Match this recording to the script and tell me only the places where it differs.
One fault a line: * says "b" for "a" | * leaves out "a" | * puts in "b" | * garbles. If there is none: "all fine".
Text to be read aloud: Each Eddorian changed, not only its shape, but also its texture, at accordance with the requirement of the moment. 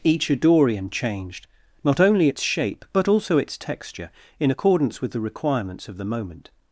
* says "in" for "at"
* says "requirements" for "requirement"